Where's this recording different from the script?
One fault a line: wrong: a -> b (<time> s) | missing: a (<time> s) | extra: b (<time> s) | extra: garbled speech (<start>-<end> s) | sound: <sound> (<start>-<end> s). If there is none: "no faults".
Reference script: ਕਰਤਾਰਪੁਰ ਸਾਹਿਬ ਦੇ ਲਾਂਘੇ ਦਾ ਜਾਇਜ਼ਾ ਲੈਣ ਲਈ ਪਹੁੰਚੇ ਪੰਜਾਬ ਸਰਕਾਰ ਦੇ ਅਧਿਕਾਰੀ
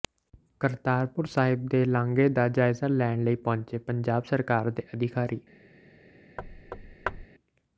sound: thud (6.4-7.3 s)